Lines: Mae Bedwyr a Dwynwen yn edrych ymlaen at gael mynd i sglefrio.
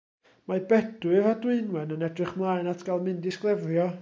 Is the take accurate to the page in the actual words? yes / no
yes